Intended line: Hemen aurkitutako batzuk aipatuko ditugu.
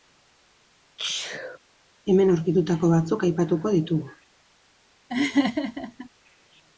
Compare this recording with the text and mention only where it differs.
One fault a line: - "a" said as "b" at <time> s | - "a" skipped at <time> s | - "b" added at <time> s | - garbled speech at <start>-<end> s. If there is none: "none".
none